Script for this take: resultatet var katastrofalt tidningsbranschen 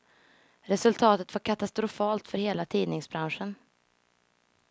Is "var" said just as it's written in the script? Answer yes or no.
yes